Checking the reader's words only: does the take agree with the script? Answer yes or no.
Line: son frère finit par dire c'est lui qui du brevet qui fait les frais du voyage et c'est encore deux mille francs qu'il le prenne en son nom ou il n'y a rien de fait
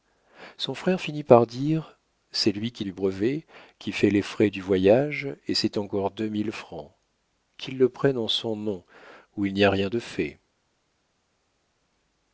yes